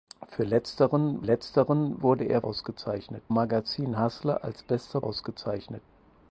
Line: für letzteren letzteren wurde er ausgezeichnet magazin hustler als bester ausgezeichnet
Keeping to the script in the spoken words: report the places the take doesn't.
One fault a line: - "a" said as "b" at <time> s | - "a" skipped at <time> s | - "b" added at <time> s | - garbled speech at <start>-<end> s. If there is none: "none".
none